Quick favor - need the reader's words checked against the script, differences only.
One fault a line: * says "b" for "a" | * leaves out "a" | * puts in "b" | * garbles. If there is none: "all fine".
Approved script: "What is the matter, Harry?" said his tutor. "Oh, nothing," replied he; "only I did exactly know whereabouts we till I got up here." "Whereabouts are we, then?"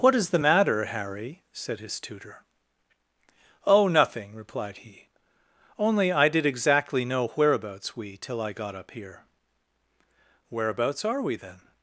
all fine